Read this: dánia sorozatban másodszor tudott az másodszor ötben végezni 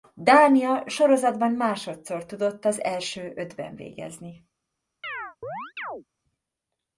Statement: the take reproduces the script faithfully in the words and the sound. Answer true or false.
false